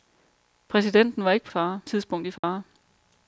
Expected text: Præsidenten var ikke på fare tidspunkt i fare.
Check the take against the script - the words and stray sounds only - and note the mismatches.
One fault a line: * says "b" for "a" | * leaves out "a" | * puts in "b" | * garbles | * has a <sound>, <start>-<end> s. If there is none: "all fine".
* has a dropout, 2.4-2.4 s